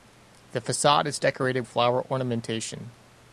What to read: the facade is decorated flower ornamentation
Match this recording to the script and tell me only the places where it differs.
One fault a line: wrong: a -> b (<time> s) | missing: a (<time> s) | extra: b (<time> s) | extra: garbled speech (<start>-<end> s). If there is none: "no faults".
no faults